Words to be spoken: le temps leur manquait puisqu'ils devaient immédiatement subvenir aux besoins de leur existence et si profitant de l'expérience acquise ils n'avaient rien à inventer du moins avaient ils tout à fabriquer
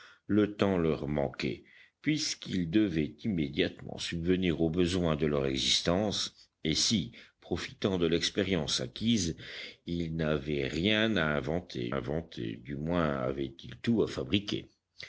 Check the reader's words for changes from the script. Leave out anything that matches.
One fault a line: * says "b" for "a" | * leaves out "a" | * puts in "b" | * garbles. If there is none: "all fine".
* puts in "inventer"